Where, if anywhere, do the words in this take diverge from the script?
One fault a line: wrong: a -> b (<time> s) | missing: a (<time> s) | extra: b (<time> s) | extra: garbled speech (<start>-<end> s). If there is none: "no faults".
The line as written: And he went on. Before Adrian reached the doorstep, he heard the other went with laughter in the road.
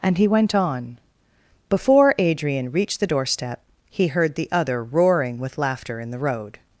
wrong: went -> roaring (4.8 s)